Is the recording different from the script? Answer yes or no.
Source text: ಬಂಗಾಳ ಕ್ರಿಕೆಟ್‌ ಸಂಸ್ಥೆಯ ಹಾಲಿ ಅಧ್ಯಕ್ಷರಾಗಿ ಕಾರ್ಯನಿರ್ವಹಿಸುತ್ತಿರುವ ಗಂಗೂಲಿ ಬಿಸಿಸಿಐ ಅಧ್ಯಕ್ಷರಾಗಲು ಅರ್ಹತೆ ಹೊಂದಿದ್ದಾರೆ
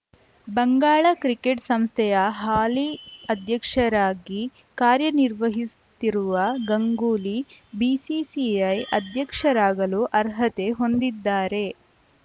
no